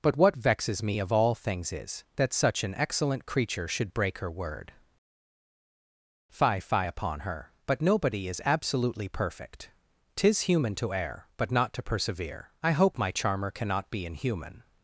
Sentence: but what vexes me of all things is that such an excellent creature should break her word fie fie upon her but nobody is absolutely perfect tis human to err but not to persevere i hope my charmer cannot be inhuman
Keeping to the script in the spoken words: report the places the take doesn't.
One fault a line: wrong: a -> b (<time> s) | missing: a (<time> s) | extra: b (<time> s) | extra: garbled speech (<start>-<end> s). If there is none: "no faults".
no faults